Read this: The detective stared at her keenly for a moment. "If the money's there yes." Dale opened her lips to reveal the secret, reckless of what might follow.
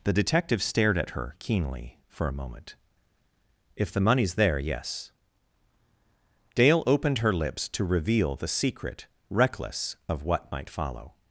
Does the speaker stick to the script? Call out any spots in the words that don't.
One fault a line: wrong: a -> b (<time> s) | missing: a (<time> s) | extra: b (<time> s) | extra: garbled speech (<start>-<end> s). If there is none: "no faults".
no faults